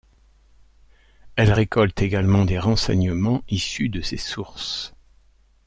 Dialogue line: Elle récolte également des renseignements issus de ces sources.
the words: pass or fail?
pass